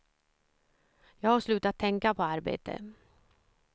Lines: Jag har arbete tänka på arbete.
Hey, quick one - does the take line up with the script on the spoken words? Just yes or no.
no